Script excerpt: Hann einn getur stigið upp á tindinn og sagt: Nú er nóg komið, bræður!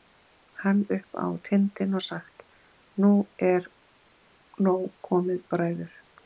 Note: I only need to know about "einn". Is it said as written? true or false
false